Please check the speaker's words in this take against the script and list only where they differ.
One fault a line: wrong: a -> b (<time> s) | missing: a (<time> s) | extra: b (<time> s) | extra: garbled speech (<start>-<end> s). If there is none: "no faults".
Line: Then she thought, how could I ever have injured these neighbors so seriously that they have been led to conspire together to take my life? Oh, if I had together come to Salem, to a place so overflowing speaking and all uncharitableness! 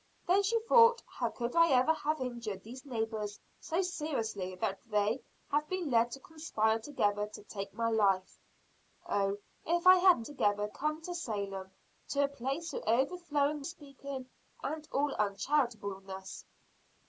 no faults